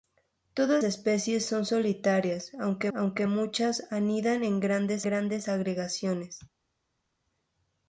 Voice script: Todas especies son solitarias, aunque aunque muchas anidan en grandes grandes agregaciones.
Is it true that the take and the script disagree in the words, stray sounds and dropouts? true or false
false